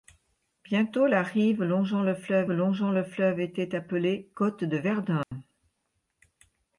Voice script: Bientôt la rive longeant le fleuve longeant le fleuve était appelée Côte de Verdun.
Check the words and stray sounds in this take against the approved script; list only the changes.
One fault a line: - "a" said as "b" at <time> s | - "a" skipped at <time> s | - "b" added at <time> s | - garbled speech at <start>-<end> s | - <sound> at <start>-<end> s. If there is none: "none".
- dropout at 5.2-5.3 s